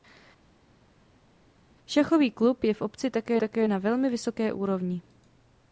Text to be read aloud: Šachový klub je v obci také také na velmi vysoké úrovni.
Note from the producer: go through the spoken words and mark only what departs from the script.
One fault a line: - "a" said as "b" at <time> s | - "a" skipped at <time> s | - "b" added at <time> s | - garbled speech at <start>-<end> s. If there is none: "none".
none